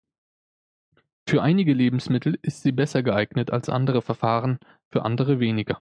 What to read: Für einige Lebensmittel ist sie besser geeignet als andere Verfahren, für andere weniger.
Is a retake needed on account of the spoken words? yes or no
no